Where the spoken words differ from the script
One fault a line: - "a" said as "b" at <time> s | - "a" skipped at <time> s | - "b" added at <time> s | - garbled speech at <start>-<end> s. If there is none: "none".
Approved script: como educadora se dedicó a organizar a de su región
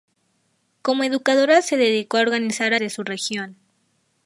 none